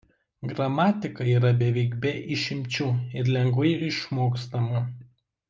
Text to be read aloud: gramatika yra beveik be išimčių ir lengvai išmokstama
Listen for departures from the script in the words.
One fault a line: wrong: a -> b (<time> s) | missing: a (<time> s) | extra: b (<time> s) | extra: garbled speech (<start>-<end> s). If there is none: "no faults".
no faults